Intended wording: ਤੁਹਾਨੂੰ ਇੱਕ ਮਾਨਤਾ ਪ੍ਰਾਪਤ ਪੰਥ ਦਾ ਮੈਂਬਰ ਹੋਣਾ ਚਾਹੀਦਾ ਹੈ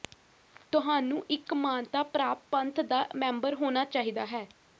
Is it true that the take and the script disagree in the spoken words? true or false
false